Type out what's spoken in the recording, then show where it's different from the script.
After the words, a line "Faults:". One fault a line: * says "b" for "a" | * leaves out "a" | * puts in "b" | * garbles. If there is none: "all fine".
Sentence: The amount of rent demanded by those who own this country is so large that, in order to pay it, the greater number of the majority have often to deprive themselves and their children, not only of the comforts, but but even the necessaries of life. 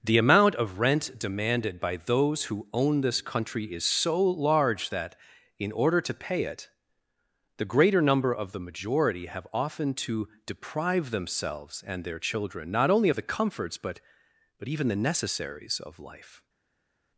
The amount of rent demanded by those who own this country is so large that, in order to pay it, the greater number of the majority have often to deprive themselves and their children, not only of the comforts, but but even the necessaries of life.
Faults:
all fine